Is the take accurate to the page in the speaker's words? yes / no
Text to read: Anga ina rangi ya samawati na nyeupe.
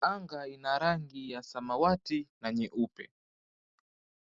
yes